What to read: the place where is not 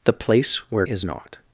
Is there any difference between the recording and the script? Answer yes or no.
no